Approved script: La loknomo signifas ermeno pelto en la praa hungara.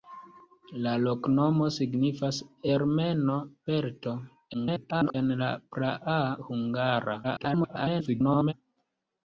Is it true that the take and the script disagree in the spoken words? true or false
true